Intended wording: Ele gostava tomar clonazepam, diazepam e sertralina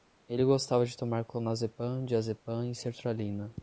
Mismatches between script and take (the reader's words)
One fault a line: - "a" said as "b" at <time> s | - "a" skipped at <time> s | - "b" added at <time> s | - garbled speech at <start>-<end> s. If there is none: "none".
- "de" added at 0.8 s